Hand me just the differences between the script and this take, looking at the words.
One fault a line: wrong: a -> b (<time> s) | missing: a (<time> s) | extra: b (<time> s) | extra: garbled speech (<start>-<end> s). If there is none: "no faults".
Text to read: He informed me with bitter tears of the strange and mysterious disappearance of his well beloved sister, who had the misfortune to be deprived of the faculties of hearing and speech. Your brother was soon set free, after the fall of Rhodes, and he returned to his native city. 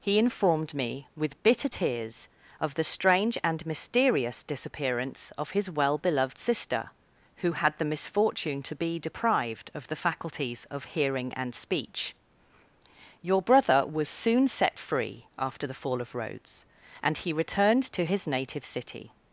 no faults